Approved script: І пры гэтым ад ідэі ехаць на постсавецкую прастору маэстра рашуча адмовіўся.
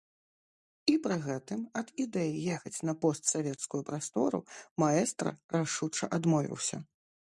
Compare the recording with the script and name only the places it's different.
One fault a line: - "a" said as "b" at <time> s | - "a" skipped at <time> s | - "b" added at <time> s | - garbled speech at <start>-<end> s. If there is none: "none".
none